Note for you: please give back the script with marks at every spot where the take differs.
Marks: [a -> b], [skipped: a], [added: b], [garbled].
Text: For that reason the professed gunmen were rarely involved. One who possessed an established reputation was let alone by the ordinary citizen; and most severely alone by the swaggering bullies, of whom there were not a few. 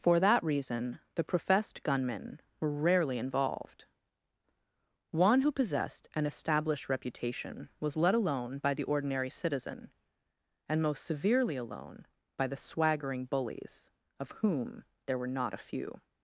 For that reason the professed gunmen were rarely involved. One who possessed an established reputation was let alone by the ordinary citizen; and most severely alone by the swaggering bullies, of whom there were not a few.